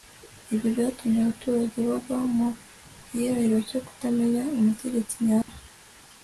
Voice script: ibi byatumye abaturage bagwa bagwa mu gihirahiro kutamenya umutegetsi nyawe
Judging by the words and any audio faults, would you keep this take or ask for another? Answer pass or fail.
fail